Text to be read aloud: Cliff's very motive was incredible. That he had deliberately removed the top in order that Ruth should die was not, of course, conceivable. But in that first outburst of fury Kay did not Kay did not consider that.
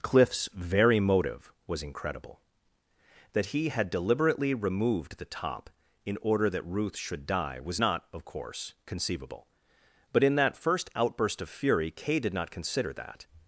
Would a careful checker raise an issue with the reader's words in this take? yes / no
yes